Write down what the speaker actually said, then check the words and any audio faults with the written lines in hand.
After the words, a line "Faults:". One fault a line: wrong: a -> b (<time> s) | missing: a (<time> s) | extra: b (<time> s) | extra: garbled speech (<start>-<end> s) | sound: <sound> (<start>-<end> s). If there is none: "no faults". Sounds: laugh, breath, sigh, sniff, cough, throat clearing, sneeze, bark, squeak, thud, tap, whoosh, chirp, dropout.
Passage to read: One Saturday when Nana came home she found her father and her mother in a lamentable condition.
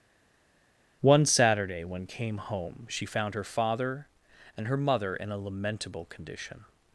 One Saturday when came home she found her father and her mother in a lamentable condition.
Faults:
missing: Nana (2.1 s)